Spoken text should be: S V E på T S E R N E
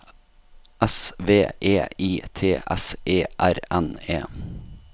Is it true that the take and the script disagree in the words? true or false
true